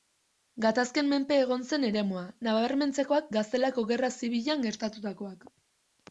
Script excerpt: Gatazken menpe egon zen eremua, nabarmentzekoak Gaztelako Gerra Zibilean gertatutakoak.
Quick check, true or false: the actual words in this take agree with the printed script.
true